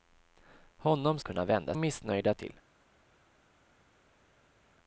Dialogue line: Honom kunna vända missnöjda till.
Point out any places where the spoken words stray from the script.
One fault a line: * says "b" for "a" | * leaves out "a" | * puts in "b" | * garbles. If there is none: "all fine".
all fine